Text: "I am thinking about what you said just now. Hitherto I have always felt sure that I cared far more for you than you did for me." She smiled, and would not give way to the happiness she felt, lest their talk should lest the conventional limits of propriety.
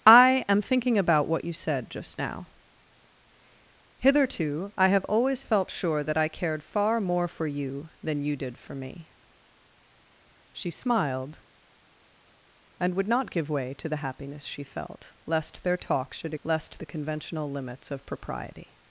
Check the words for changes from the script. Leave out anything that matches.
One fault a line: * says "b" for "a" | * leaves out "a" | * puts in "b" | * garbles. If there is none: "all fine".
all fine